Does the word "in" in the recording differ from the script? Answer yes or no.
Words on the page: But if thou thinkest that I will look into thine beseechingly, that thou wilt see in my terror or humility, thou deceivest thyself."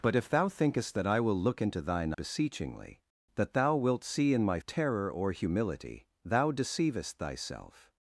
no